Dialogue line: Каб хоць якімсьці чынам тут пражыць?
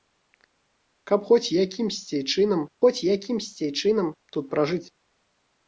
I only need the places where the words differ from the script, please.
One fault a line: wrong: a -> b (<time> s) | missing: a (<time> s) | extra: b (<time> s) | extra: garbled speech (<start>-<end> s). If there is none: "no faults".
extra: хоць якімсьці чынам (2.8 s)